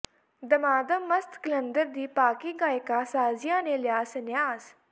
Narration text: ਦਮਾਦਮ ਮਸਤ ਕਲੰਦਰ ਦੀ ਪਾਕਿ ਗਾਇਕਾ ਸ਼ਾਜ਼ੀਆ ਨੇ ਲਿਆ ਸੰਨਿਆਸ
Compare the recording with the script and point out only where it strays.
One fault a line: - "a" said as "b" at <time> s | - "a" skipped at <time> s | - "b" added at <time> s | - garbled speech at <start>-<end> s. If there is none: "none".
none